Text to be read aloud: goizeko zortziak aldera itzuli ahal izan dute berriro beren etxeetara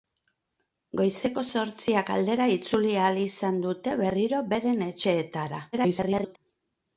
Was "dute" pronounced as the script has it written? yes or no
yes